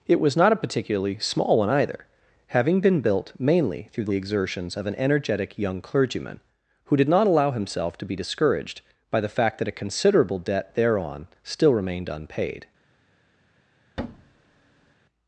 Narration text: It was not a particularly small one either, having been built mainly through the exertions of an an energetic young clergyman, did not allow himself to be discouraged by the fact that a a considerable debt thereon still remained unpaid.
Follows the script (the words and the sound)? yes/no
no